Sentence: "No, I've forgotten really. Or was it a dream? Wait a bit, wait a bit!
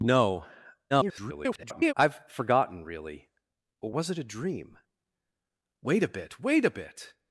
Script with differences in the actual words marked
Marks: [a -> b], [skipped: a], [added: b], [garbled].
"No, [garbled] I've forgotten really. Or was it a dream? Wait a bit, wait a bit!